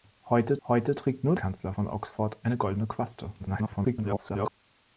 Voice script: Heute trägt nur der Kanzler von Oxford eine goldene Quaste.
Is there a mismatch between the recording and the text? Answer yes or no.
yes